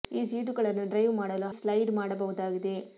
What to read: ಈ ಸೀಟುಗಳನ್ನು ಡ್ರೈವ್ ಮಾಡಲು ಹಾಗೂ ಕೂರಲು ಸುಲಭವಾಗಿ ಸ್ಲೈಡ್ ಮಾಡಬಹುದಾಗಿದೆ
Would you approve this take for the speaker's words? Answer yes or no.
no